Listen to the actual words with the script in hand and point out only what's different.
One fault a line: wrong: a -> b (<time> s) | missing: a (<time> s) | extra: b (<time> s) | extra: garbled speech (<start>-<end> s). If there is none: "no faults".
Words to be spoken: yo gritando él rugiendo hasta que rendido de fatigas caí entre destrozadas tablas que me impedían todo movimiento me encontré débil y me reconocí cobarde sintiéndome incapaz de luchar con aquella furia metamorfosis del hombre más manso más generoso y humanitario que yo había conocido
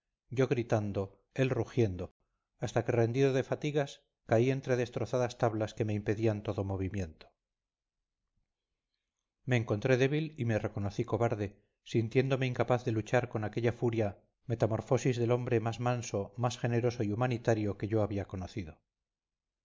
no faults